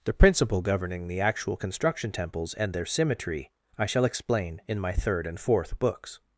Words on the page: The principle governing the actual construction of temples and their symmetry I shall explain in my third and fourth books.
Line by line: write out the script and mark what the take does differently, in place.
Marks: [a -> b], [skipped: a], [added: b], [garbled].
The principle governing the actual construction [skipped: of] temples and their symmetry I shall explain in my third and fourth books.